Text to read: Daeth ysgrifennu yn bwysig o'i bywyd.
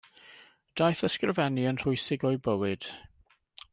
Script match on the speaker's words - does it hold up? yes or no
yes